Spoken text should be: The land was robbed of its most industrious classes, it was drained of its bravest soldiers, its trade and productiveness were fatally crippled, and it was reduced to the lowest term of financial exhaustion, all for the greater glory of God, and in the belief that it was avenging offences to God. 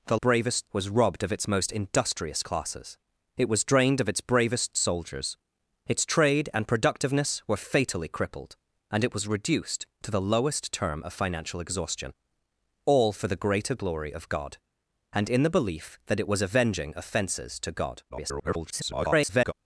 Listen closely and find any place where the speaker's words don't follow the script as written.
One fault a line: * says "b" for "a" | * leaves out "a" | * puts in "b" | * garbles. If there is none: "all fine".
* says "bravest" for "land"
* garbles